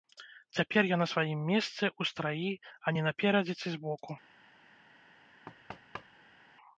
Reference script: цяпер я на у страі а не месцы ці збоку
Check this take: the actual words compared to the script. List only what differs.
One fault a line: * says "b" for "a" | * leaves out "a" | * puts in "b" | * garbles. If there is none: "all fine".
* puts in "сваім месцы"
* says "наперадзе" for "месцы"